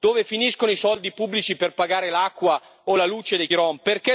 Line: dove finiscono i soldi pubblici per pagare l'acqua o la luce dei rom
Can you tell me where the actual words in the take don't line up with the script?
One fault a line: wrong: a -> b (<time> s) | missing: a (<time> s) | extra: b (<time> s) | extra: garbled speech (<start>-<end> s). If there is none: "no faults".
no faults